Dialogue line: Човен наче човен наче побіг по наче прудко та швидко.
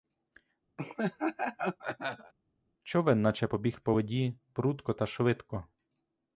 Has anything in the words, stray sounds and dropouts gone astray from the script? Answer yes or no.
yes